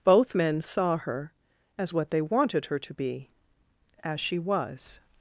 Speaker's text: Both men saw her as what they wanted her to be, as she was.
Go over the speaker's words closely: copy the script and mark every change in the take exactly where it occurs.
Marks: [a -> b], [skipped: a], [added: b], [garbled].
Both men saw her as what they wanted her to be, as she was.